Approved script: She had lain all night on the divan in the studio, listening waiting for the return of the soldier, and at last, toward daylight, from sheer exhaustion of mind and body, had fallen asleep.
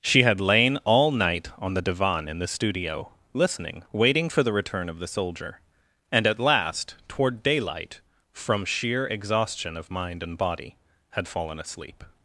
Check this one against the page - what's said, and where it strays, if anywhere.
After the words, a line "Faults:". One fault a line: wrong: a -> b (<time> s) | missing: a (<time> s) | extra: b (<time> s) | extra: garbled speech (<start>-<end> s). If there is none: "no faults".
She had lain all night on the divan in the studio, listening waiting for the return of the soldier, and at last, toward daylight, from sheer exhaustion of mind and body, had fallen asleep.
Faults:
no faults